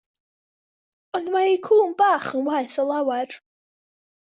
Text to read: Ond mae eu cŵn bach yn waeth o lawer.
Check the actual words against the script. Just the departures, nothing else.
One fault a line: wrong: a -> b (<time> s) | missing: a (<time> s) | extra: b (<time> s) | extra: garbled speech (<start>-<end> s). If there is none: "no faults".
no faults